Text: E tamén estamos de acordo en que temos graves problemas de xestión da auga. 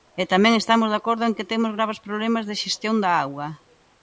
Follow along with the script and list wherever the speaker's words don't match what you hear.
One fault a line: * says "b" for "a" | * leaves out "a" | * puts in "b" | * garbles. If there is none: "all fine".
all fine